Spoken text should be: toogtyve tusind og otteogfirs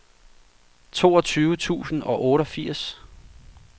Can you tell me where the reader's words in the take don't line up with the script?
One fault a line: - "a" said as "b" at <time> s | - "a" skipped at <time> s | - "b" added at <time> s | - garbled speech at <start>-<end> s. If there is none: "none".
none